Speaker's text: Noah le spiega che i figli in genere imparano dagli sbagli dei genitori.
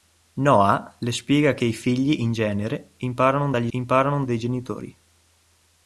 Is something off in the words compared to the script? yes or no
yes